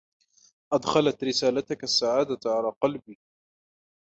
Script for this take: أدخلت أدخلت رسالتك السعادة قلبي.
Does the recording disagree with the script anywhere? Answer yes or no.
yes